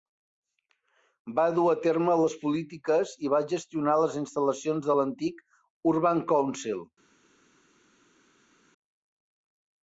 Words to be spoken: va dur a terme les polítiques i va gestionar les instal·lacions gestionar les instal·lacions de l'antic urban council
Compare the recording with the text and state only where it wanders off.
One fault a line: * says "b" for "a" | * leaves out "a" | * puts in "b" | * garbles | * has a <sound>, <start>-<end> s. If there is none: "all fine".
* leaves out "gestionar les instal·lacions"